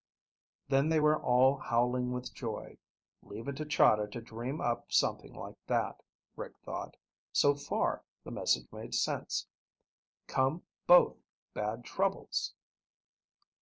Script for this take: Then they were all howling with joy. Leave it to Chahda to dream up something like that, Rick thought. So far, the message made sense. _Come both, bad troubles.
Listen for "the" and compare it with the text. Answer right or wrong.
right